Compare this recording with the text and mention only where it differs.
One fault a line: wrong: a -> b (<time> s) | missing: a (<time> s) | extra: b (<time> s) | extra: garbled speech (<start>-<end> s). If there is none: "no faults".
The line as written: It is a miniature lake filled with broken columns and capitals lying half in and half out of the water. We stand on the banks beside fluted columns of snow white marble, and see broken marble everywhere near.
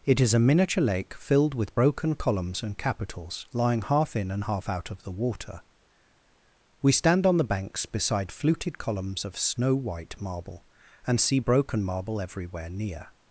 no faults